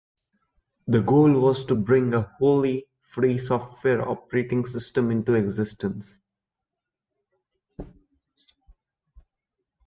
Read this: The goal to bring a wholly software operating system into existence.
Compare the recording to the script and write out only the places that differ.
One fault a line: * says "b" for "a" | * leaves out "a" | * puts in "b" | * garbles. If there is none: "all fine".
* puts in "was"
* puts in "free"